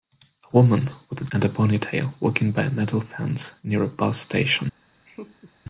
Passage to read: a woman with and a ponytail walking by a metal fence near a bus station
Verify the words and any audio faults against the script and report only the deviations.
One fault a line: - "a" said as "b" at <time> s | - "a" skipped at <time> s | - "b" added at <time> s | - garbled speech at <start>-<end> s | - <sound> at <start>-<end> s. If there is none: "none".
- laugh at 5.1-5.5 s